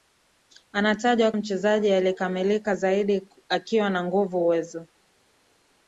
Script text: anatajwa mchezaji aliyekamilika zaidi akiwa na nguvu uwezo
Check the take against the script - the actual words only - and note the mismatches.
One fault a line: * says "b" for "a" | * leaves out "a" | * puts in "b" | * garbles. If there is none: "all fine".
all fine